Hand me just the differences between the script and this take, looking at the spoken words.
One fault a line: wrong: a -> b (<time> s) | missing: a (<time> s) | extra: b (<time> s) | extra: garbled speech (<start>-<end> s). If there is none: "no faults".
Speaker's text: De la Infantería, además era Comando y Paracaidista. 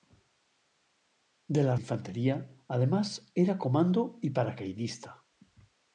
no faults